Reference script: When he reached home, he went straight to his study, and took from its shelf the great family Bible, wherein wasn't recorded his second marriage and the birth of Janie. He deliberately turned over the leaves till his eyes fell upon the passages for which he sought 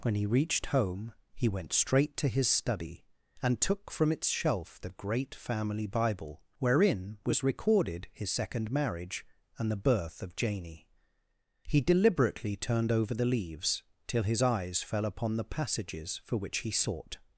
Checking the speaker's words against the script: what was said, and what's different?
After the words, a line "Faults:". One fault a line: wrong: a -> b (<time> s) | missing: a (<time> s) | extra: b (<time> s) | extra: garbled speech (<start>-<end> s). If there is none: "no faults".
When he reached home, he went straight to his study, and took from its shelf the great family Bible, wherein was recorded his second marriage and the birth of Janie. He deliberately turned over the leaves till his eyes fell upon the passages for which he sought
Faults:
wrong: wasn't -> was (7.2 s)